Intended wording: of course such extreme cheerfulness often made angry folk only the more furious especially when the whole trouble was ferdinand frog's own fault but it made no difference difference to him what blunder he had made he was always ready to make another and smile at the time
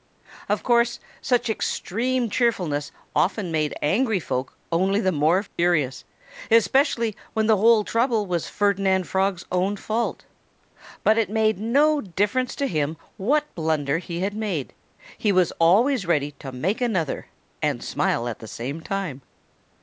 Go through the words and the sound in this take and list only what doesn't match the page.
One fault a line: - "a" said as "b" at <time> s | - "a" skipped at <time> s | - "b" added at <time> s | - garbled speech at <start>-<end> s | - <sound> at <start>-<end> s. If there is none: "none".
- dropout at 5.5-5.6 s
- "difference" skipped at 12.6 s
- "same" added at 18.5 s